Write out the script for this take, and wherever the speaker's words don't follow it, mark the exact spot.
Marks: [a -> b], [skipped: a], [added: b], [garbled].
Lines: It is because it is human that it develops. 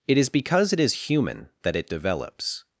It is because it is human that it develops.